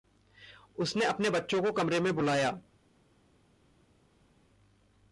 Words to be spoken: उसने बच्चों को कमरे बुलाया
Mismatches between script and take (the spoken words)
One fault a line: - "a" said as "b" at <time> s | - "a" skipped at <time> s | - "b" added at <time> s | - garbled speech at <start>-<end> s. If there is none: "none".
- "अपने" added at 1.1 s
- "में" added at 2.0 s